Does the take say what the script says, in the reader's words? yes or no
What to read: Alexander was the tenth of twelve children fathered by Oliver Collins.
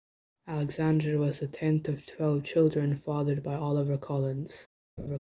yes